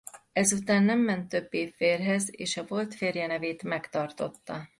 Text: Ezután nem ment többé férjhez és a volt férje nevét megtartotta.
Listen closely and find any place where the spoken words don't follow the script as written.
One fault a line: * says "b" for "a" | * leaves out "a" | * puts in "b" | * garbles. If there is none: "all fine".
all fine